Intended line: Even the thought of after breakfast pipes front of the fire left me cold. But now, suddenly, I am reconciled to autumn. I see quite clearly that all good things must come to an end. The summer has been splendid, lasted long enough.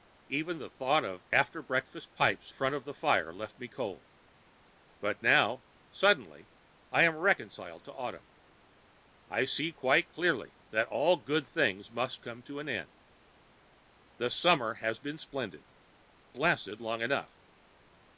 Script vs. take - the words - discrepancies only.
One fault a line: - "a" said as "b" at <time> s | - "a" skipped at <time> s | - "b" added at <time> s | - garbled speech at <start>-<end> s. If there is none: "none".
none